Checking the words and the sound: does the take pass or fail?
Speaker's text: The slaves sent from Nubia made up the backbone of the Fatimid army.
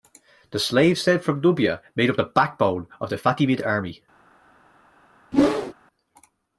fail